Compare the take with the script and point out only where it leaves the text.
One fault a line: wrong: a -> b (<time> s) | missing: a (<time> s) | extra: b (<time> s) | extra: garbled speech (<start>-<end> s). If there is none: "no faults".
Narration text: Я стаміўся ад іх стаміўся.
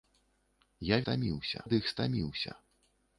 no faults